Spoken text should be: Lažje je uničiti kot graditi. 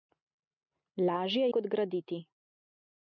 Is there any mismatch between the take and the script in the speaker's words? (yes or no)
yes